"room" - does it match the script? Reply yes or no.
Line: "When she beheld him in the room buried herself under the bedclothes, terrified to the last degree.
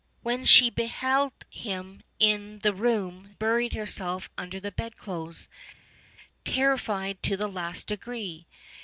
yes